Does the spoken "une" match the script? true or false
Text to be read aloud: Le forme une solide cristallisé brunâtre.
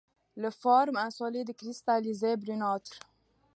false